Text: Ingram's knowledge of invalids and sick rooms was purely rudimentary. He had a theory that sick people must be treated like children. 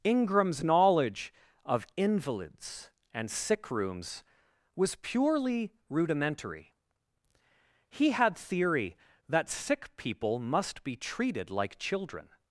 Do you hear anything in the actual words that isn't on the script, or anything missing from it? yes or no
yes